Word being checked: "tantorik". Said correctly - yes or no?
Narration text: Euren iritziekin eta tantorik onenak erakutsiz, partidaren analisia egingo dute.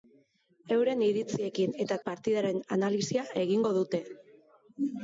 no